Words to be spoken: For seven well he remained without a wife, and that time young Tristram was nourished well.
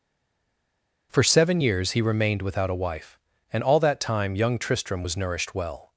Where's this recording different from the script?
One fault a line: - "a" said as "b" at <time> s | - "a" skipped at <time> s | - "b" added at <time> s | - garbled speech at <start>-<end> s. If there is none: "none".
- "well" said as "years" at 1.6 s
- "all" added at 3.6 s